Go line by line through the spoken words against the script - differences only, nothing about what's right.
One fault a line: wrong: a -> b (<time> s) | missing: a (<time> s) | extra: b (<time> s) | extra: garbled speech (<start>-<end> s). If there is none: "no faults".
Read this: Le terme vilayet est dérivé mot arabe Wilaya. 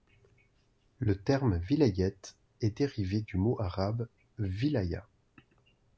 extra: du (3.2 s)